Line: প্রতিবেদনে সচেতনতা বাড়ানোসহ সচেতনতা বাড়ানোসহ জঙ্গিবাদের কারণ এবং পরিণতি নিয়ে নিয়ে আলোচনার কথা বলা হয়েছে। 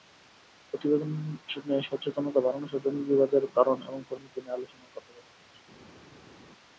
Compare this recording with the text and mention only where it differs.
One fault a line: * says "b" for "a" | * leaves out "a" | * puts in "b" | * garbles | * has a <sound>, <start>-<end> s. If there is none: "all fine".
* leaves out "সচেতনতা বাড়ানোসহ"
* leaves out "নিয়ে"